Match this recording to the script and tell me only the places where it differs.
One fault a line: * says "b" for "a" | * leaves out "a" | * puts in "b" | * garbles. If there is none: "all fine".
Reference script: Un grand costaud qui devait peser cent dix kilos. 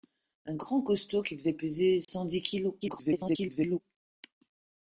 * garbles